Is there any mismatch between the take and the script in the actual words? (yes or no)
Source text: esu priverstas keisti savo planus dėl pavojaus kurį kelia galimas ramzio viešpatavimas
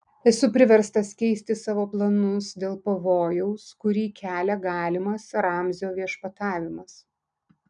no